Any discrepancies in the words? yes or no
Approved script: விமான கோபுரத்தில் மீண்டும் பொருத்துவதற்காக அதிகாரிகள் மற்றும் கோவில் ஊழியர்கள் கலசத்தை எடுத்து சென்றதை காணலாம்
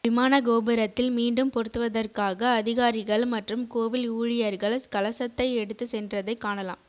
no